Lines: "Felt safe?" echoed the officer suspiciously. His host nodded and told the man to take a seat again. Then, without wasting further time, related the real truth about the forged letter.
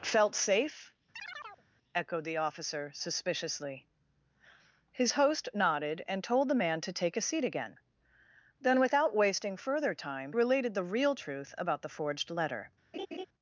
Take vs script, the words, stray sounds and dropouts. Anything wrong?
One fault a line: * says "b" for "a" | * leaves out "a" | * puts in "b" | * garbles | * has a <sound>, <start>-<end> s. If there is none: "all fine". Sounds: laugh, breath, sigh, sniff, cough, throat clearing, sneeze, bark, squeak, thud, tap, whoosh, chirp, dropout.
* has a chirp, 1.1-1.6 s
* has a laugh, 12.9-13.3 s